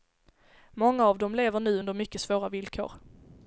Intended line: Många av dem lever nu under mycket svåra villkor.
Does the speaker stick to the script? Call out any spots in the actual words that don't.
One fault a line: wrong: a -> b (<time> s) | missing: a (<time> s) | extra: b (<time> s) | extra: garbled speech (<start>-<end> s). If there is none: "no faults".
no faults